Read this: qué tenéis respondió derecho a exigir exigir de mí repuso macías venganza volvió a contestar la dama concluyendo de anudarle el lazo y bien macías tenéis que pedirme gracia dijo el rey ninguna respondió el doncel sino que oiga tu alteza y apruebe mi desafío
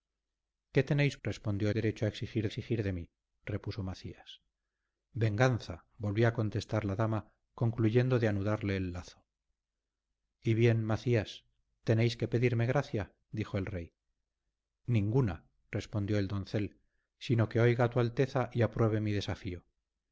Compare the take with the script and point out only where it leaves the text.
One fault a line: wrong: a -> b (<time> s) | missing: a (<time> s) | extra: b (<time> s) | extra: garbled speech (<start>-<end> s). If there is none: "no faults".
no faults